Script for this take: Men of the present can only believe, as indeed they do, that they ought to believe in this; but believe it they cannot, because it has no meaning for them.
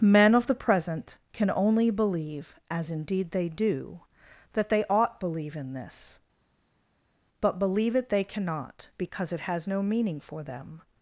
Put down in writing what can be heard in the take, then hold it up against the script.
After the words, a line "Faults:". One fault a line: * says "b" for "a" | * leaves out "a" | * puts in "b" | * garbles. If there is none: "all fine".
Men of the present can only believe, as indeed they do, that they ought believe in this; but believe it they cannot, because it has no meaning for them.
Faults:
* leaves out "to"